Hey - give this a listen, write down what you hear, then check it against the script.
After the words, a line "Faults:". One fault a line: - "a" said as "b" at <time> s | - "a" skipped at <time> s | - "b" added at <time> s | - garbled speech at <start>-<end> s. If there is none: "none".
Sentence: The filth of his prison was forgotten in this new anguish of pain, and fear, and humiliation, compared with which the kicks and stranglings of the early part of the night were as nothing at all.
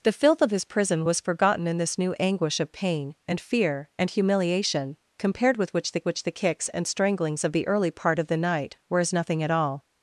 The filth of his prison was forgotten in this new anguish of pain, and fear, and humiliation, compared with which the which the kicks and stranglings of the early part of the night were as nothing at all.
Faults:
- "which the" added at 6.1 s